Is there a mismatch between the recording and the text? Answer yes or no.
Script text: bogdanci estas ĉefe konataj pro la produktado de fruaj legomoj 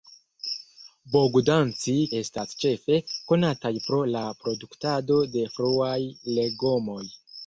no